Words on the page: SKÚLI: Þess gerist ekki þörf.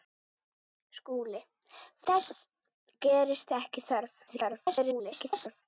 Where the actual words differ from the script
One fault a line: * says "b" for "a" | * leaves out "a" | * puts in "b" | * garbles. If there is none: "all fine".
* garbles